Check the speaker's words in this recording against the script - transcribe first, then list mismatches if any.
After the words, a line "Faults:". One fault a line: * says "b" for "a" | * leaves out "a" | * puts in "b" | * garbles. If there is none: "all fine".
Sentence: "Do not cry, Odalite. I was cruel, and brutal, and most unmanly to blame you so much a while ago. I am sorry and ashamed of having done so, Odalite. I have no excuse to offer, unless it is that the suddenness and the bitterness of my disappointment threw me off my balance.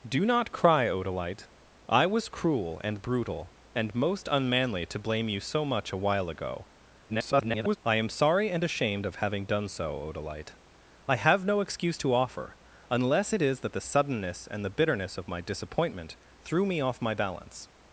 "Do not cry, Odalite. I was cruel, and brutal, and most unmanly to blame you so much a while ago. [garbled] I am sorry and ashamed of having done so, Odalite. I have no excuse to offer, unless it is that the suddenness and the bitterness of my disappointment threw me off my balance.
Faults:
* garbles